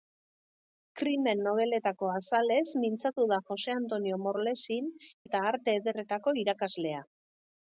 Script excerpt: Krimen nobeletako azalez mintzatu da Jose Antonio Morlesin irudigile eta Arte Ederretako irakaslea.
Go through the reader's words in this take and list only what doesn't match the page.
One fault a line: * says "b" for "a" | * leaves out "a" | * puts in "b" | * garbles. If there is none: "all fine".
* leaves out "irudigile"